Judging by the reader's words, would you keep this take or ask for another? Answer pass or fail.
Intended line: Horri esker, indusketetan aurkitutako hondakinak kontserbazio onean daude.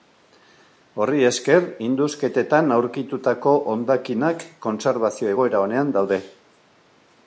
fail